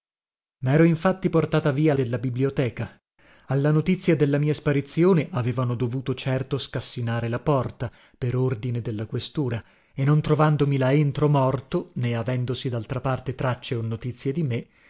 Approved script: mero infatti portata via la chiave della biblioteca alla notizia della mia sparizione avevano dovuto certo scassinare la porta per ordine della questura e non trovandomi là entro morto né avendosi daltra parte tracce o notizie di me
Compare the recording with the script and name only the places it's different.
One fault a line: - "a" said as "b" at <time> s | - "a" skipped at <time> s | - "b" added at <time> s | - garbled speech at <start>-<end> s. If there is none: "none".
- "la chiave" skipped at 1.9 s